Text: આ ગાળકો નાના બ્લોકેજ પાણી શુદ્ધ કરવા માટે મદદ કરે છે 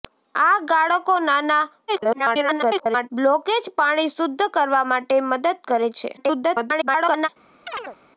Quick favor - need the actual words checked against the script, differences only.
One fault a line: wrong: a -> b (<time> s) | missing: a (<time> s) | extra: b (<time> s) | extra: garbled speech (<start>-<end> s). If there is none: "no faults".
extra: garbled speech (1.9-3.1 s)
extra: garbled speech (6.2-7.3 s)